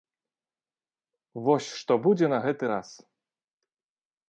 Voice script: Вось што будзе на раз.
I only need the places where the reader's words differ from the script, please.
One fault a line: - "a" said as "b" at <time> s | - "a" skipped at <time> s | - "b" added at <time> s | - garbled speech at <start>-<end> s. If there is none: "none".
- "гэты" added at 2.5 s